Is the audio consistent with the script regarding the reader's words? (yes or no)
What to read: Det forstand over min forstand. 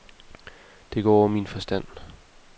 no